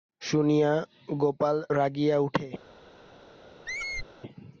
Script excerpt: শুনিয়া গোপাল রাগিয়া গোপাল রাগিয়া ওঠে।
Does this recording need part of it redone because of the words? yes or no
yes